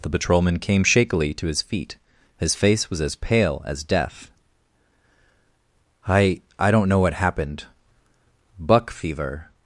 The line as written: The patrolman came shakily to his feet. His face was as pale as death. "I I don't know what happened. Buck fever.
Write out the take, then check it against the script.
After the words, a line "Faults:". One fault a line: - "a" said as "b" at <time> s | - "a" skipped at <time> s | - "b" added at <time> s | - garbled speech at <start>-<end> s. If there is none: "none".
The patrolman came shakily to his feet. His face was as pale as death. "I I don't know what happened. Buck fever.
Faults:
none